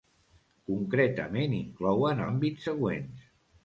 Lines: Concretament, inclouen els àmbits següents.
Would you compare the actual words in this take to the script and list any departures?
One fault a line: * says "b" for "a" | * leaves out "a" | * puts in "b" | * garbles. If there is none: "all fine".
* leaves out "els"